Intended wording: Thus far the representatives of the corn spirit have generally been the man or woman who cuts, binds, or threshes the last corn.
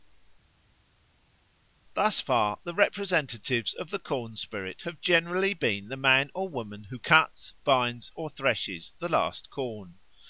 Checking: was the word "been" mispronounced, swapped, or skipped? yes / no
no